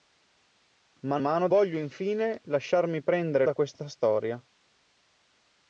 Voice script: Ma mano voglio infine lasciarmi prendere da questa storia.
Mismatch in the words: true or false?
false